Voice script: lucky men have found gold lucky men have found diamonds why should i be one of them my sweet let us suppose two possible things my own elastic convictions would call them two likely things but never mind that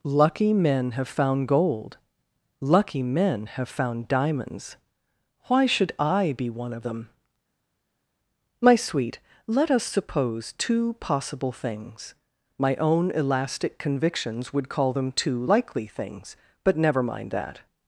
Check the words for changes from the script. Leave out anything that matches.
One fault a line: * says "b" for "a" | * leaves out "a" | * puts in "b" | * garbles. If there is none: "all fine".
all fine